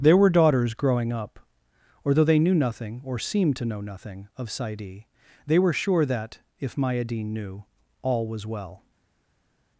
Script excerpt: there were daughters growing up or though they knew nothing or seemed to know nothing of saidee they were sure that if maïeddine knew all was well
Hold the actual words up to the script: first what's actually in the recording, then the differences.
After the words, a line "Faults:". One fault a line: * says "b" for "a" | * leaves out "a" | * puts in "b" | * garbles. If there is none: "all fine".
there were daughters growing up or though they knew nothing or seemed to know nothing of saidee they were sure that if maïeddine knew all was well
Faults:
all fine